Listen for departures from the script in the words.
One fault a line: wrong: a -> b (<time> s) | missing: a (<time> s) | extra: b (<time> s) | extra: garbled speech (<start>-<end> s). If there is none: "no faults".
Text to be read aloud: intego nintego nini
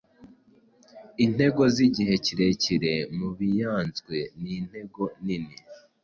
extra: zigihe kirekire mubianzwe (1.8 s)